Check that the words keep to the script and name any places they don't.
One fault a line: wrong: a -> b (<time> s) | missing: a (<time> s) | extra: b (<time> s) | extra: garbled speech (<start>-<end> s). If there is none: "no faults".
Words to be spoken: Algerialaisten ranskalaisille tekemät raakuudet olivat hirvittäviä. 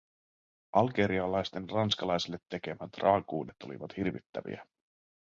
no faults